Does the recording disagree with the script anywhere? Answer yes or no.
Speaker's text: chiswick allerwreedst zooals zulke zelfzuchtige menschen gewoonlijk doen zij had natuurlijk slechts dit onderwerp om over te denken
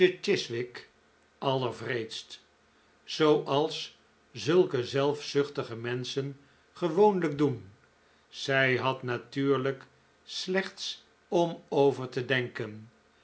yes